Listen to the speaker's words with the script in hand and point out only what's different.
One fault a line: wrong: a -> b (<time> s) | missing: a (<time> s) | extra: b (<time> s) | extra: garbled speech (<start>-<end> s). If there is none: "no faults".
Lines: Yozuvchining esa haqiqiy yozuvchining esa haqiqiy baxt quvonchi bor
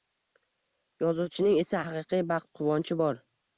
missing: yozuvchining esa haqiqiy (2.2 s)